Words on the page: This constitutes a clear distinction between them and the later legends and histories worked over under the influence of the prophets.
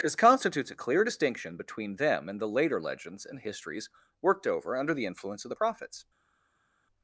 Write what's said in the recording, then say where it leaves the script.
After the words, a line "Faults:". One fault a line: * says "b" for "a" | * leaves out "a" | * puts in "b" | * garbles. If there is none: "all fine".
This constitutes a clear distinction between them and the later legends and histories worked over under the influence of the prophets.
Faults:
all fine